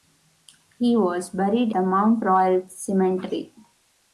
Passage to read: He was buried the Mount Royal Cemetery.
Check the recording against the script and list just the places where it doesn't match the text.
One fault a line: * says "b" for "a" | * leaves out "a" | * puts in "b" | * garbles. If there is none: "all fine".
all fine